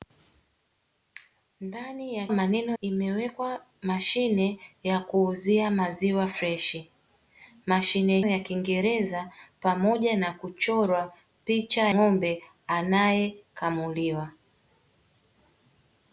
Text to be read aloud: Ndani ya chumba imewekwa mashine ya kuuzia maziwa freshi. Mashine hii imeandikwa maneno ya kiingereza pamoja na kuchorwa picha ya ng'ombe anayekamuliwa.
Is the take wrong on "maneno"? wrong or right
wrong